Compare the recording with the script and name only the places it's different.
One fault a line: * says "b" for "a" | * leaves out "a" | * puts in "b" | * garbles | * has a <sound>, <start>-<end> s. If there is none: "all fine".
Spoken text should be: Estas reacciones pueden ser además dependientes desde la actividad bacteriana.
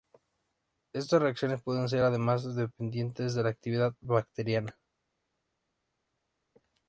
* says "de" for "desde"